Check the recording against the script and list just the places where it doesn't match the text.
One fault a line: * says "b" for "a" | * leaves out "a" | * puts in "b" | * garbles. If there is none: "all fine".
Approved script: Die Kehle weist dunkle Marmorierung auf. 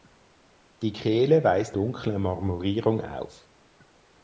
all fine